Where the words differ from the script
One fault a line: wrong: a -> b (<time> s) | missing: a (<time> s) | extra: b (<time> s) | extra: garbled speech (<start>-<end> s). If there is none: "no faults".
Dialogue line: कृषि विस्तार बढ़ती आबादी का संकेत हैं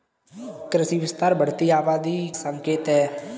missing: का (2.2 s)